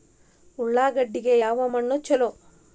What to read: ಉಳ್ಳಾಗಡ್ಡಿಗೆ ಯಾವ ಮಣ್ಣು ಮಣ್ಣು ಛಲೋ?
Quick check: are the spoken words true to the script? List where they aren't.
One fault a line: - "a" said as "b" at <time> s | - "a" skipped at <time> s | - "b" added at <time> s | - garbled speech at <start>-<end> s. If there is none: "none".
- "ಮಣ್ಣು" skipped at 2.0 s